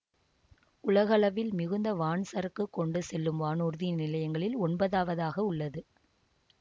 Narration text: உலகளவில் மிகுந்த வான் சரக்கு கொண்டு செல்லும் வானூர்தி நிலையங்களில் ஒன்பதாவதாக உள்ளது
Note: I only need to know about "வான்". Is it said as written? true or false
true